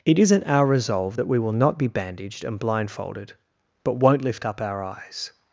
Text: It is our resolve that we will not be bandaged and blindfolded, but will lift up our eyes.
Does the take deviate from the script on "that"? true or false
false